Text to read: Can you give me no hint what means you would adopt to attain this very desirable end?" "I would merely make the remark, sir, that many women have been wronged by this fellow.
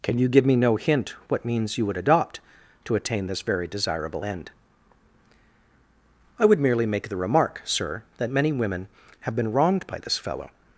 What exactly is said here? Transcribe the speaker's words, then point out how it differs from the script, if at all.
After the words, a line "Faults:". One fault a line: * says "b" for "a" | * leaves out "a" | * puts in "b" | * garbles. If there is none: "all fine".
Can you give me no hint what means you would adopt to attain this very desirable end?" "I would merely make the remark, sir, that many women have been wronged by this fellow.
Faults:
all fine